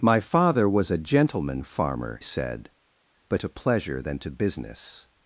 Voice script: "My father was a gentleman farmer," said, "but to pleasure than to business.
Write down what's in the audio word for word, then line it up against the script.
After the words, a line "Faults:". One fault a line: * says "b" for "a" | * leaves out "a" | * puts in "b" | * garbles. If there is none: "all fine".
"My father was a gentleman farmer," said, "but to pleasure than to business.
Faults:
all fine